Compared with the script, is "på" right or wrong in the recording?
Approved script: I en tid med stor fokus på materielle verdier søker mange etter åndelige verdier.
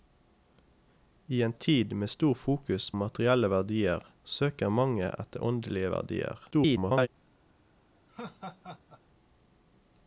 wrong